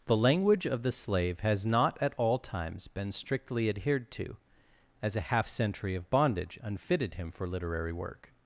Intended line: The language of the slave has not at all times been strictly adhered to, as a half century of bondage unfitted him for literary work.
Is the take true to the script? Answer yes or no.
yes